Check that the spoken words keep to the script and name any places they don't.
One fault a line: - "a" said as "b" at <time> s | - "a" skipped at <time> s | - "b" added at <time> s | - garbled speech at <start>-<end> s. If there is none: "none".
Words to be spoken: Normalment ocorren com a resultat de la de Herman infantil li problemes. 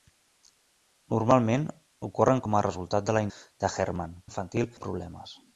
none